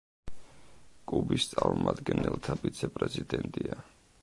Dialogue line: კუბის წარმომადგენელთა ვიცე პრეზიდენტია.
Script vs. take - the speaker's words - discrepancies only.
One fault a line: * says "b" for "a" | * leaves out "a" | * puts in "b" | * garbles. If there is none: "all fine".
all fine